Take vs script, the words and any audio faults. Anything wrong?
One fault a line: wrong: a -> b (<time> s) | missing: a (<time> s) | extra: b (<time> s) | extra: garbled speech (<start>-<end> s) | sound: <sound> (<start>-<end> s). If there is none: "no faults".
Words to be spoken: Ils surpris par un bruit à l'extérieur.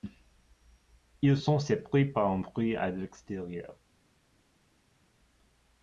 extra: sont (1.3 s)